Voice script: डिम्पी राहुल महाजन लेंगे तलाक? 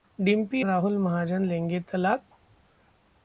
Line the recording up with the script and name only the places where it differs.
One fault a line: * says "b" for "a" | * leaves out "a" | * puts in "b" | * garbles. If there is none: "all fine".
all fine